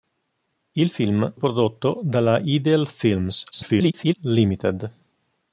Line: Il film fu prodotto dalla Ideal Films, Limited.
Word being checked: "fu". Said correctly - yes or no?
no